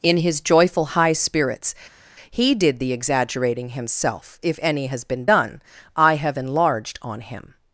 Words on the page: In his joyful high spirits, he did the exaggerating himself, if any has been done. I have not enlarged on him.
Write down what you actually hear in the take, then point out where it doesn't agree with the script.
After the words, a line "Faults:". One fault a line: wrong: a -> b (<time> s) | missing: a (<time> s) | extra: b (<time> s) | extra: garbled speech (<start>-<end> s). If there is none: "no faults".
In his joyful high spirits, he did the exaggerating himself, if any has been done. I have enlarged on him.
Faults:
missing: not (6.4 s)